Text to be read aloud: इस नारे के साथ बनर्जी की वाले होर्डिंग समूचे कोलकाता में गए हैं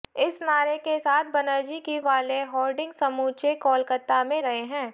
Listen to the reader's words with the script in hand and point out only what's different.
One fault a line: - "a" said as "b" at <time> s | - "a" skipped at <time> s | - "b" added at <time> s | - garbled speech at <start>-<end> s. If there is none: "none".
none